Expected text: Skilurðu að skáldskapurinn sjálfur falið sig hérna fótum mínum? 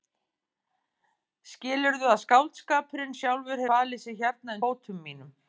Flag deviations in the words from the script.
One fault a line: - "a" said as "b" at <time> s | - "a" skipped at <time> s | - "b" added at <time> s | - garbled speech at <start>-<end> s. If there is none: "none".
none